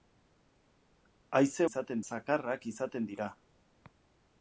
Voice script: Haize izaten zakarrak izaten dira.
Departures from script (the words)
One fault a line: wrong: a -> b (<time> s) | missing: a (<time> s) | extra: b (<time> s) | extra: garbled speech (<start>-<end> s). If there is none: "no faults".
no faults